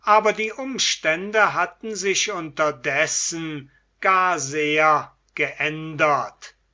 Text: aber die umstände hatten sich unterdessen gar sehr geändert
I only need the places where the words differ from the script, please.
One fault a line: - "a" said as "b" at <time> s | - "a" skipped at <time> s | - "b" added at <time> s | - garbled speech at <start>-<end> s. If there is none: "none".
none